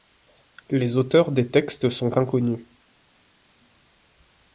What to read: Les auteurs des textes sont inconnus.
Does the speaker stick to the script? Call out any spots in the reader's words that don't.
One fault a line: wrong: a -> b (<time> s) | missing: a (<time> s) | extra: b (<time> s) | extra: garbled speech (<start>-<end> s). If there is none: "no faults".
no faults